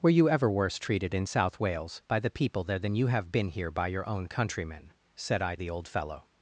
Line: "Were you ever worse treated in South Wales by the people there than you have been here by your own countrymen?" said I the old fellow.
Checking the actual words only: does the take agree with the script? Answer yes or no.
yes